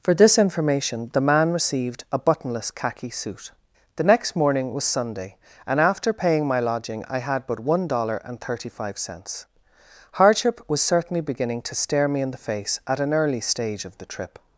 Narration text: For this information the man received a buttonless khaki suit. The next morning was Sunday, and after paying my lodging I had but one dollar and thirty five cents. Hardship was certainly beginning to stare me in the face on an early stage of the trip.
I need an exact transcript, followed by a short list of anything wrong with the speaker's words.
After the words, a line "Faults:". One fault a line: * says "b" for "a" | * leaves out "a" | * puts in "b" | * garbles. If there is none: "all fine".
For this information the man received a buttonless khaki suit. The next morning was Sunday, and after paying my lodging I had but one dollar and thirty five cents. Hardship was certainly beginning to stare me in the face at an early stage of the trip.
Faults:
* says "at" for "on"